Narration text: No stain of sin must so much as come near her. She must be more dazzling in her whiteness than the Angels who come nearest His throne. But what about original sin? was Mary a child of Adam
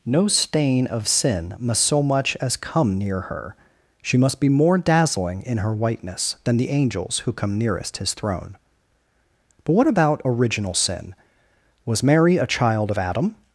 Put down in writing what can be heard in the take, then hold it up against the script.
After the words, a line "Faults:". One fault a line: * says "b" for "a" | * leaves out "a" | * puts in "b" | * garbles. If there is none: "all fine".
No stain of sin must so much as come near her. She must be more dazzling in her whiteness than the Angels who come nearest His throne. But what about original sin? was Mary a child of Adam
Faults:
all fine